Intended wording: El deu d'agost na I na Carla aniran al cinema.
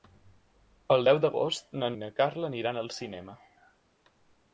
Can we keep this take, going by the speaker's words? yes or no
yes